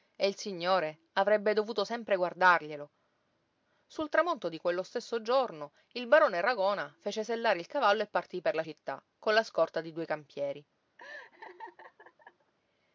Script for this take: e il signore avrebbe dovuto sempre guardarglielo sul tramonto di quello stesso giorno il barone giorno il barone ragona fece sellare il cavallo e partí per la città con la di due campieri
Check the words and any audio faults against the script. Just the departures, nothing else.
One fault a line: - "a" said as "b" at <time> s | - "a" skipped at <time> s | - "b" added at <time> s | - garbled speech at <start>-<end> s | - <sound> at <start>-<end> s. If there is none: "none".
- "giorno il barone" skipped at 6.4 s
- "scorta" added at 9.4 s
- laugh at 11.0-12.5 s